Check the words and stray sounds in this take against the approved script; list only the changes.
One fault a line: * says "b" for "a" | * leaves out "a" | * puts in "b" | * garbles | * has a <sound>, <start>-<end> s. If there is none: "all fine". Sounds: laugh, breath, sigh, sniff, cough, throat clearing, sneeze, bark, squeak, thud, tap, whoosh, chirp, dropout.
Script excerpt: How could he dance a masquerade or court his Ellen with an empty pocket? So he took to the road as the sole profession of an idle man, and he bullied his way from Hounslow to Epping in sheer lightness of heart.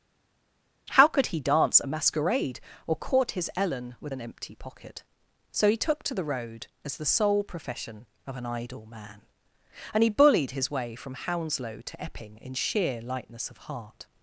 all fine